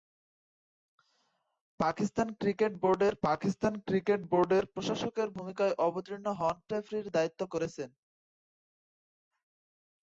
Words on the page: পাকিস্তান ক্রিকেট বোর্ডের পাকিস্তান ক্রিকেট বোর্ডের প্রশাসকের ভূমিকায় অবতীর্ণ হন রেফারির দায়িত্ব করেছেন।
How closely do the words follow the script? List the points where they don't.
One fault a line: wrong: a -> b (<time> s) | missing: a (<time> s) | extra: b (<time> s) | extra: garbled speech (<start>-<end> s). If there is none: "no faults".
no faults